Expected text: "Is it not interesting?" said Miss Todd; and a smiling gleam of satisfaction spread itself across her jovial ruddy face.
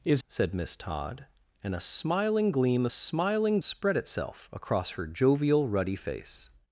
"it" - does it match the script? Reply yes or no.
no